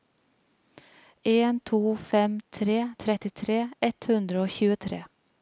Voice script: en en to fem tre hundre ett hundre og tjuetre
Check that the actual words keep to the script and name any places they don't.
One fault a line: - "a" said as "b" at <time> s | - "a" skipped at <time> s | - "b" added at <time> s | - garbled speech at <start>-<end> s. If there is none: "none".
- "en" skipped at 1.6 s
- "hundre" said as "trettitre" at 3.0 s